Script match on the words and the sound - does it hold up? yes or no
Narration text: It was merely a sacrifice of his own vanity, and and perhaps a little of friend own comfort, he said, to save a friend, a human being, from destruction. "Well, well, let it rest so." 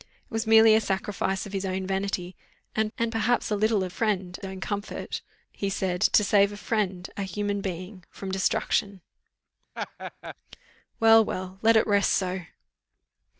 no